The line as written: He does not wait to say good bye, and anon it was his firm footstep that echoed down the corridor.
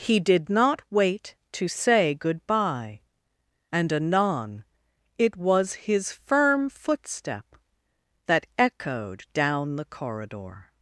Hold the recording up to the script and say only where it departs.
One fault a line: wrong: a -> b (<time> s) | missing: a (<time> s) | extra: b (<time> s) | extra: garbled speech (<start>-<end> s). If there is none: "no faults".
wrong: does -> did (0.2 s)